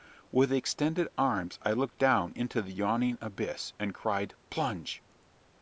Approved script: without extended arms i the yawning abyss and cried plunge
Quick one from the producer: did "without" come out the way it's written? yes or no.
no